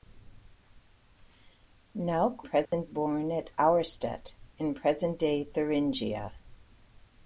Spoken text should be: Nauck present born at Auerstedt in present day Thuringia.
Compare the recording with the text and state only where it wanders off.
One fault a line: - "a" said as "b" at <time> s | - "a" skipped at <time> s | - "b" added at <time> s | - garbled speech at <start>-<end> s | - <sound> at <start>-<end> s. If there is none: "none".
- dropout at 2.7-2.7 s